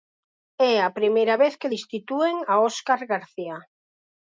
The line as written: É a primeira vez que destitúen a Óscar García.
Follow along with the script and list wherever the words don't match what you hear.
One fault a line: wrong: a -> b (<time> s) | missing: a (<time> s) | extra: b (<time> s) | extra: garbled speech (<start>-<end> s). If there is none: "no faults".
no faults